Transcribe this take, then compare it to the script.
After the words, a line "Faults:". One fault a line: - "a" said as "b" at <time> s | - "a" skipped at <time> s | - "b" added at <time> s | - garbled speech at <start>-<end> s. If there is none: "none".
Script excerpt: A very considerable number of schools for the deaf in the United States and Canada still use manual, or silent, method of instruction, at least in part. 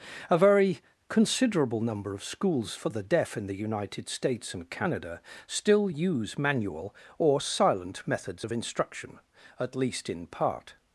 A very considerable number of schools for the deaf in the United States and Canada still use manual, or silent, methods of instruction, at least in part.
Faults:
- "method" said as "methods" at 8.1 s